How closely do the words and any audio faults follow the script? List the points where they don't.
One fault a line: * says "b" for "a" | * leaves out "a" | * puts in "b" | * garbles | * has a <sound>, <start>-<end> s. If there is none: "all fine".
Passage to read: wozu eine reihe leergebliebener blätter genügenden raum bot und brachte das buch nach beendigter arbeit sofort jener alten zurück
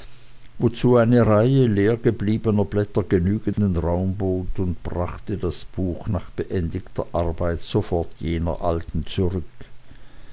* has a dropout, 3.5-3.6 s